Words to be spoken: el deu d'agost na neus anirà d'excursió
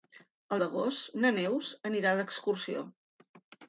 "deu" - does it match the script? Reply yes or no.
no